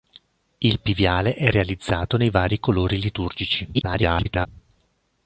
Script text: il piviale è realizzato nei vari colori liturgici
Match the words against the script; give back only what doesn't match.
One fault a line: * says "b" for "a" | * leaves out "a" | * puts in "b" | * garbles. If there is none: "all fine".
* garbles